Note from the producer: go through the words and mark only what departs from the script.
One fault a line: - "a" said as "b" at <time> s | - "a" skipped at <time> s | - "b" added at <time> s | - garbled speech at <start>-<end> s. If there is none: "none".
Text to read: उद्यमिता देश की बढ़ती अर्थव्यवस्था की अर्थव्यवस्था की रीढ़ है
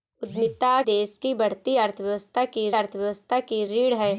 none